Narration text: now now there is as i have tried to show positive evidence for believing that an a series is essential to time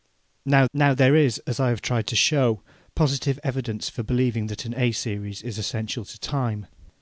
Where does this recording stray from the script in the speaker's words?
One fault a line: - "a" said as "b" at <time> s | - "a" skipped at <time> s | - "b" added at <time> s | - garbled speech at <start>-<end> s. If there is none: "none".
none